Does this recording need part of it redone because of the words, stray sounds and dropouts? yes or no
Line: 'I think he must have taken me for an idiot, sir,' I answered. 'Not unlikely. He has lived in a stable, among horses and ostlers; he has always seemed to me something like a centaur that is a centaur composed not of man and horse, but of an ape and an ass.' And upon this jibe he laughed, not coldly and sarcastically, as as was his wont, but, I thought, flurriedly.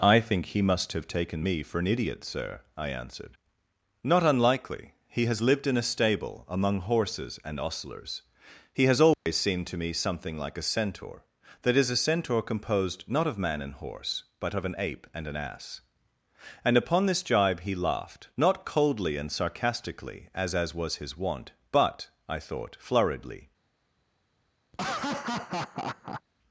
yes